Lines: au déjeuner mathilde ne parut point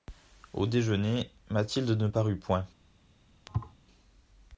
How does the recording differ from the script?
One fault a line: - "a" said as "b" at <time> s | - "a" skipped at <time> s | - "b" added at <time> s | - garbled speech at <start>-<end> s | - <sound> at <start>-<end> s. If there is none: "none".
- thud at 3.5-3.7 s